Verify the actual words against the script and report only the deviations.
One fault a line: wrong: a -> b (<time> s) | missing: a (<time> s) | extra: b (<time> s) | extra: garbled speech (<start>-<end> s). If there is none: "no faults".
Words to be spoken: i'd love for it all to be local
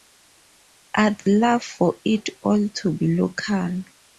no faults